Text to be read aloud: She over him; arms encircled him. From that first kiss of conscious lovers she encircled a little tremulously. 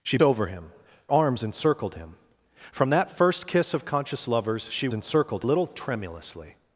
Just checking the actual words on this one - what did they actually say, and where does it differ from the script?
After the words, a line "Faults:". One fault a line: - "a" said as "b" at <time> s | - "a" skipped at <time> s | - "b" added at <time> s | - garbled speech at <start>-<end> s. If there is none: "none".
She over him; arms encircled him. From that first kiss of conscious lovers she encircled a little tremulously.
Faults:
none